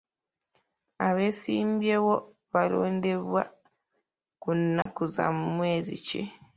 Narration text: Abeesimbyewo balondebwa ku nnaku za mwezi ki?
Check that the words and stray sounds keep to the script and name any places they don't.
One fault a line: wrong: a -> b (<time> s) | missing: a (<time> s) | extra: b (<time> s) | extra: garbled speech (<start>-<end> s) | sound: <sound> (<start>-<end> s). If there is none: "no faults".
sound: dropout (4.8-4.9 s)